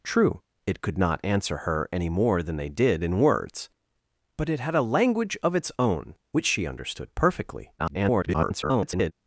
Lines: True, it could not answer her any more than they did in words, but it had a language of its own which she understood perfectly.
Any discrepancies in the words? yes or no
yes